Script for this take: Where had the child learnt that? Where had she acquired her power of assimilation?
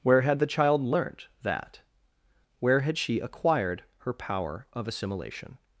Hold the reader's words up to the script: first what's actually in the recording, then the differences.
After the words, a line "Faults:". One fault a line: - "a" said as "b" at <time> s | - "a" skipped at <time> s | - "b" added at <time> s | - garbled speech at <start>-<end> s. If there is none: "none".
Where had the child learnt that? Where had she acquired her power of assimilation?
Faults:
none